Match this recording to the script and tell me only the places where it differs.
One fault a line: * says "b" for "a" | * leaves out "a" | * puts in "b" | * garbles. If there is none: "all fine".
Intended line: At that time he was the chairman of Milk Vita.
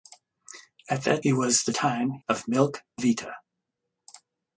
* leaves out "time"
* says "time" for "chairman"